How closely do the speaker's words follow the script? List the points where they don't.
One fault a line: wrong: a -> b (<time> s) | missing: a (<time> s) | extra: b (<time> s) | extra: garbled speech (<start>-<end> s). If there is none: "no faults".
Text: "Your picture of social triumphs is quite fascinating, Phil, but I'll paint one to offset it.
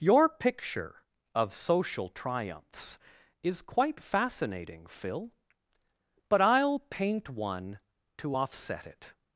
no faults